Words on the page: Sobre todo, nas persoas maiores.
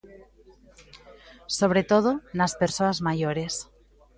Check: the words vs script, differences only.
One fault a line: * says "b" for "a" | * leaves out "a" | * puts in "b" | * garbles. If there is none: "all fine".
all fine